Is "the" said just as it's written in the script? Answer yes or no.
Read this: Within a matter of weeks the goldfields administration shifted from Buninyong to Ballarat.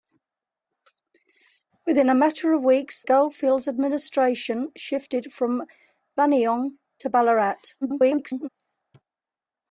no